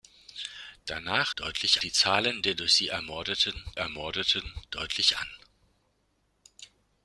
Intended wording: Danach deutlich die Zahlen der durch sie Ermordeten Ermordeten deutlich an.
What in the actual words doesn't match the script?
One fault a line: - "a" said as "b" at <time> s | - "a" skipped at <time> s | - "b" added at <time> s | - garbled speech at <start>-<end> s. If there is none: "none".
none